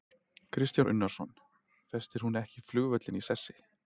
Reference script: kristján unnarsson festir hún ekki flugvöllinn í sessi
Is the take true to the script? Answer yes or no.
yes